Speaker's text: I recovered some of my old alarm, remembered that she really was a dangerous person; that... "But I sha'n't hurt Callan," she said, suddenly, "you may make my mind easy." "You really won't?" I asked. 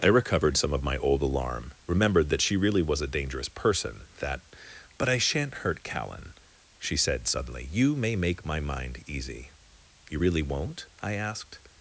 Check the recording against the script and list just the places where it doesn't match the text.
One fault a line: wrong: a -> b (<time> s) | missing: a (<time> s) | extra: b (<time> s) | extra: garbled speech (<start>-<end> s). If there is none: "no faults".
no faults